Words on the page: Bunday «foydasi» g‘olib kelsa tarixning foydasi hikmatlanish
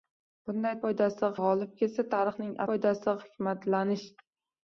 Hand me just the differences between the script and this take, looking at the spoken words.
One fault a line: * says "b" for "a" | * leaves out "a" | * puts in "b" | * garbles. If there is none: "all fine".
all fine